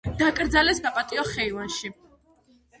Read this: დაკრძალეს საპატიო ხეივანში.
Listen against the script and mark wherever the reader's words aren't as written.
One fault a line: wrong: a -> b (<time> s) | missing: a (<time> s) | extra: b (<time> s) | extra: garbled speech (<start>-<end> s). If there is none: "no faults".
no faults